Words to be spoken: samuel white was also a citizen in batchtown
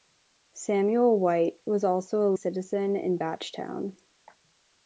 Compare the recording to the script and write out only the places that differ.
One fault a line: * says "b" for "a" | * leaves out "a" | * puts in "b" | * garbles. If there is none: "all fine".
all fine